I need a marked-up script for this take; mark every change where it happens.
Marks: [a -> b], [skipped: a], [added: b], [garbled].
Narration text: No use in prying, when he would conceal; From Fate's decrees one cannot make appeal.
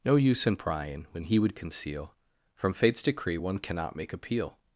No use in prying, when he would conceal; From Fate's [decrees -> decree] one cannot make appeal.